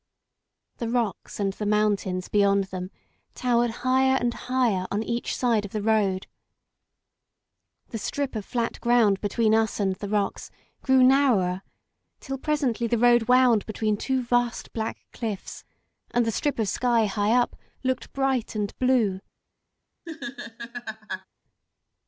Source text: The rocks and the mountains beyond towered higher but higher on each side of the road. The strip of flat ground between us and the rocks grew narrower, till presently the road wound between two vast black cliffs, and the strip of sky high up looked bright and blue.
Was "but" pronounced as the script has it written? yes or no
no